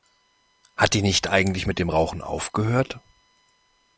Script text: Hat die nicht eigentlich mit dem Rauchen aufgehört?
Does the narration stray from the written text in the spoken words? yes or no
no